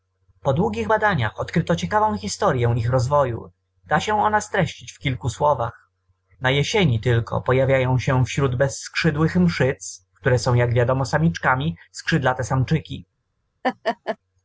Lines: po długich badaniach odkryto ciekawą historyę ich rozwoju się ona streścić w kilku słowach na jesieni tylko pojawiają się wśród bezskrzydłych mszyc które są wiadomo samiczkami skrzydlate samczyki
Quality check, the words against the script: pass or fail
fail